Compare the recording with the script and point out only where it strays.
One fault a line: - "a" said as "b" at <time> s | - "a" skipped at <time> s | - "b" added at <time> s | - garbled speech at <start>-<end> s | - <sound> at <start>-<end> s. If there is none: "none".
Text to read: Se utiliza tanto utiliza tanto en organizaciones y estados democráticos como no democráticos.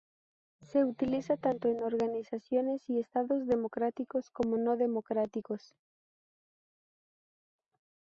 - "utiliza tanto" skipped at 1.7 s